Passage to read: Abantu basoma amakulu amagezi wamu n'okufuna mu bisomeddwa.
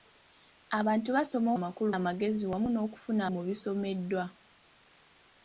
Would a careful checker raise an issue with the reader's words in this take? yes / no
no